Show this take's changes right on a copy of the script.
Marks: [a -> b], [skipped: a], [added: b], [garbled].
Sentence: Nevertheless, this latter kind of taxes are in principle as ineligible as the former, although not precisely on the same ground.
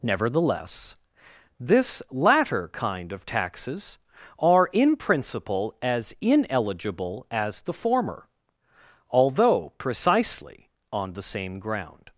Nevertheless, this latter kind of taxes are in principle as ineligible as the former, although [skipped: not] precisely on the same ground.